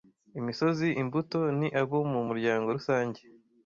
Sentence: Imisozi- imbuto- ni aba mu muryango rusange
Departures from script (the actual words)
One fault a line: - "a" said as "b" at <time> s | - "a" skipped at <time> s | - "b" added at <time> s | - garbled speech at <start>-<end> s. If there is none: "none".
- "aba" said as "abo" at 1.8 s